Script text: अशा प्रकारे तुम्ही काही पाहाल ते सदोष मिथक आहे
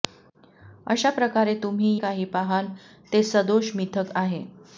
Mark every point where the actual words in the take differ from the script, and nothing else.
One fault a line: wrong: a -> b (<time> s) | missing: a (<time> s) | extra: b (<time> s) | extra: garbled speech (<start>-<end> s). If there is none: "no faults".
no faults